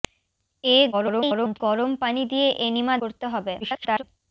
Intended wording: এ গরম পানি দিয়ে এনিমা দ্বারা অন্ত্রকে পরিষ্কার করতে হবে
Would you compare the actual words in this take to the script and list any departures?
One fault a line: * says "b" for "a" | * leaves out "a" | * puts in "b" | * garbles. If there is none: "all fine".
* garbles
* leaves out "দ্বারা অন্ত্রকে পরিষ্কার"
* garbles